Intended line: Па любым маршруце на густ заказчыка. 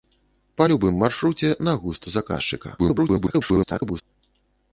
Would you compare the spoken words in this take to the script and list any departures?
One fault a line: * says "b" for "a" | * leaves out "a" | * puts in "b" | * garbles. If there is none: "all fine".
* garbles